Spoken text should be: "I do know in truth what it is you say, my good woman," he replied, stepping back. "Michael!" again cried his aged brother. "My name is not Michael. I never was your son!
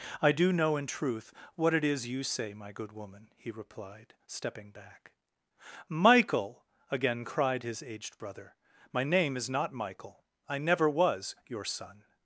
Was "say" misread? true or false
false